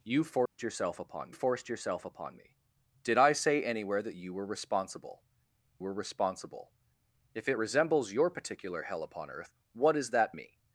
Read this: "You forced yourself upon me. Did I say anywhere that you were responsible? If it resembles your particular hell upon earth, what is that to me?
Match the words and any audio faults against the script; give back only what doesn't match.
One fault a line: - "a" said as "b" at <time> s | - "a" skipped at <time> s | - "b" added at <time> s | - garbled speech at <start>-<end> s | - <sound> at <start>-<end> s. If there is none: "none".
- dropout at 0.5-0.6 s
- "forced yourself upon" added at 1.3 s
- "were responsible" added at 5.8 s
- "to" skipped at 10.3 s